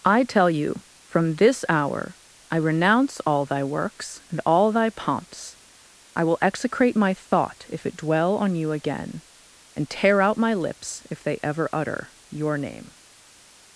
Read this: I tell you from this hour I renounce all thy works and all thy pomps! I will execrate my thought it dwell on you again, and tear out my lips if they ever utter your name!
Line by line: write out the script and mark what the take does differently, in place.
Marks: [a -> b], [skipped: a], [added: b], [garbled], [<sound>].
I tell you from this hour I renounce all thy works and all thy pomps! I will execrate my thought [added: if] it dwell on you again, and tear out my lips if they ever utter your name!